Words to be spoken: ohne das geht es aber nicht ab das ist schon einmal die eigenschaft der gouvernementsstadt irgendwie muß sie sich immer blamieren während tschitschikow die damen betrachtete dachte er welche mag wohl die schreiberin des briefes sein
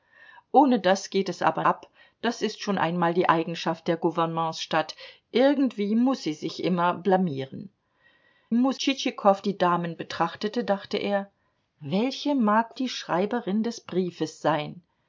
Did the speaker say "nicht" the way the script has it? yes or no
no